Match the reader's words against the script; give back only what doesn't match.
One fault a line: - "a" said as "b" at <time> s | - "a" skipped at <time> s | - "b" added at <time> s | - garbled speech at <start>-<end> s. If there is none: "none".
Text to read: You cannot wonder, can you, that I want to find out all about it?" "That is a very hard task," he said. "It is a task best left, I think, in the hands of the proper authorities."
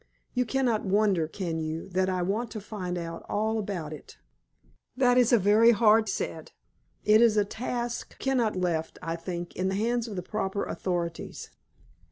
- "task he" skipped at 6.1 s
- "best" said as "cannot" at 8.2 s